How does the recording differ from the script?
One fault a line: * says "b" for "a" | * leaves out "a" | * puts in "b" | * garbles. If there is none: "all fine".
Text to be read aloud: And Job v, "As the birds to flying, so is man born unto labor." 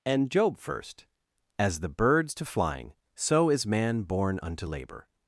* says "first" for "v"